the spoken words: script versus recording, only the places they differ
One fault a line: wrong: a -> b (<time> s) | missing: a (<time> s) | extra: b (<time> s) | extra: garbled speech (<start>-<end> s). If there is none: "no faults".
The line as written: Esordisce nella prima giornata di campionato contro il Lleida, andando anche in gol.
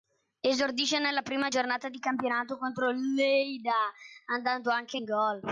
no faults